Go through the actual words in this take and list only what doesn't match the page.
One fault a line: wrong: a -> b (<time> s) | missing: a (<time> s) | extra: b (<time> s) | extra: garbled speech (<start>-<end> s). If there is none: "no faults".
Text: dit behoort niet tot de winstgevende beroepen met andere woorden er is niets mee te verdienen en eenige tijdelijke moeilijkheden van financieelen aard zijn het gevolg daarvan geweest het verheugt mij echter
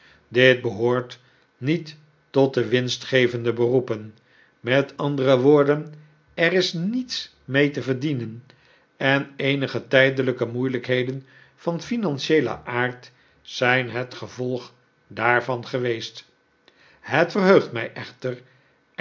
no faults